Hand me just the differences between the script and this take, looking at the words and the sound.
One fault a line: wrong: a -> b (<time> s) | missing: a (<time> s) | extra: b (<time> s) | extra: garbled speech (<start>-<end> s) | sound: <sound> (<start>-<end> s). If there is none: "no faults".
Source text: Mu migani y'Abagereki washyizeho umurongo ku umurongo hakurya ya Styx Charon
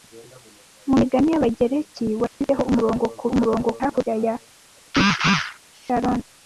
sound: dropout (2.3-2.4 s)